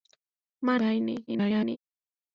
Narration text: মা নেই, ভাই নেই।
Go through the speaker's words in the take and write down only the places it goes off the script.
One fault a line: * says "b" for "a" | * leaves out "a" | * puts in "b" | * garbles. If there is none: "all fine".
* leaves out "নেই"
* garbles